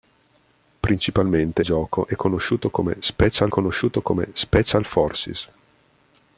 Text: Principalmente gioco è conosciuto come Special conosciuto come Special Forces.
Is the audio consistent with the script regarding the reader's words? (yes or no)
yes